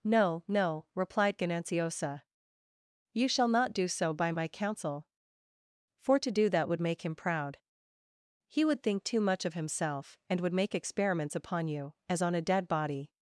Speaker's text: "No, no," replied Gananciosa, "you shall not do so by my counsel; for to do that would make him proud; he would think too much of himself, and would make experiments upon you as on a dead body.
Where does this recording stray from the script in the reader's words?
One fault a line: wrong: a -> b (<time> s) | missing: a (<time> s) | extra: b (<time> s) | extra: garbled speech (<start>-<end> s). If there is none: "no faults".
no faults